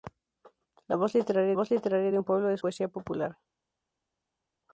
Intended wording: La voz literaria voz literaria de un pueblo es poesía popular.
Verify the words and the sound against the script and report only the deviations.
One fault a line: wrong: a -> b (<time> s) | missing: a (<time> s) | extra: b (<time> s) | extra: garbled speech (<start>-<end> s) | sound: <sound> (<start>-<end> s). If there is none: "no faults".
no faults